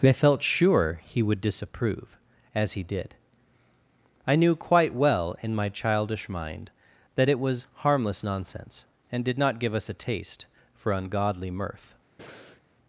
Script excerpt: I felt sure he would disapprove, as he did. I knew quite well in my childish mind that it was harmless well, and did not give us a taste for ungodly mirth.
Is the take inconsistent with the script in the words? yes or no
yes